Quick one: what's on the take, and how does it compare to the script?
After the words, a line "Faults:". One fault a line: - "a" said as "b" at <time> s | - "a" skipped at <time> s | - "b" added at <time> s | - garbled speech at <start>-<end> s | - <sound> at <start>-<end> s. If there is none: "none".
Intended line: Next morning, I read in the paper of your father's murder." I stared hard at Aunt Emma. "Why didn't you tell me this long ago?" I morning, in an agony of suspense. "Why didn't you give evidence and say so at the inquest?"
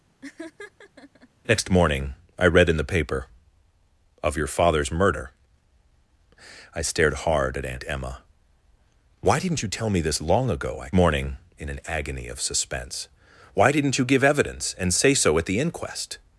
Next morning, I read in the paper of your father's murder." I stared hard at Aunt Emma. "Why didn't you tell me this long ago?" I morning, in an agony of suspense. "Why didn't you give evidence and say so at the inquest?"
Faults:
- laugh at 0.2-1.3 s